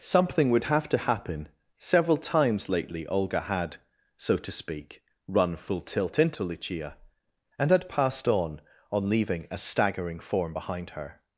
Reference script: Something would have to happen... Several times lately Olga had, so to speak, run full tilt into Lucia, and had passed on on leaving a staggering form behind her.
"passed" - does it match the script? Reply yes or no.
yes